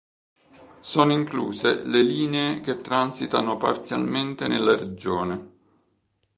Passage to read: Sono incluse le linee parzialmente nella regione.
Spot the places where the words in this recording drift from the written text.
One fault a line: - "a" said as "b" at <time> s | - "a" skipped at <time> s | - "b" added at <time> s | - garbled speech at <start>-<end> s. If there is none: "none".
- "che transitano" added at 2.6 s